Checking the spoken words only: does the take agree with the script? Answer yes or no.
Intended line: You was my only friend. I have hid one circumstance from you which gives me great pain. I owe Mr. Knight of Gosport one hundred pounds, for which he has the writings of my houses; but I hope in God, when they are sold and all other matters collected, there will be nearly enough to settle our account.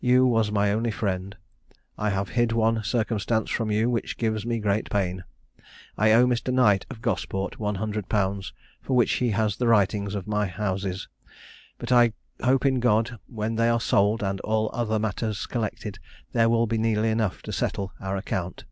yes